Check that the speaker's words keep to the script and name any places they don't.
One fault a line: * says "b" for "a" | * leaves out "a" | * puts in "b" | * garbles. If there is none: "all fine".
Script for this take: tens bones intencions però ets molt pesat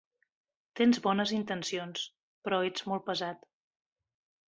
all fine